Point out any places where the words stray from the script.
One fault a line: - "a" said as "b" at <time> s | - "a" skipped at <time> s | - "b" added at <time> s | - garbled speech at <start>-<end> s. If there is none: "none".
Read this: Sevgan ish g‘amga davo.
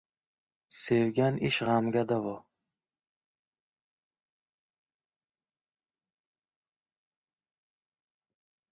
none